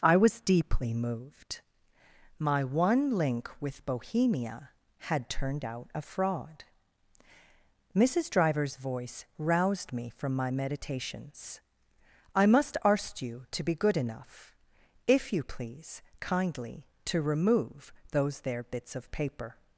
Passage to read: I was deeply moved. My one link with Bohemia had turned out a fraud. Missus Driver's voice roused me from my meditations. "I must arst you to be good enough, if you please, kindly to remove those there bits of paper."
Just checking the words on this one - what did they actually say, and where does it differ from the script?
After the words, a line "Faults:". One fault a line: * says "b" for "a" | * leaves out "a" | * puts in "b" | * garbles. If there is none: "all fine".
I was deeply moved. My one link with Bohemia had turned out a fraud. Missus Driver's voice roused me from my meditations. "I must arst you to be good enough, if you please, kindly to remove those there bits of paper."
Faults:
all fine